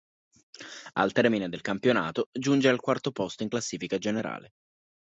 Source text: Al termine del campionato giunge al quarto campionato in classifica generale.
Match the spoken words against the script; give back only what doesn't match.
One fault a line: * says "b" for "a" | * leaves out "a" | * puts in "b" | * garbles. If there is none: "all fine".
* says "posto" for "campionato"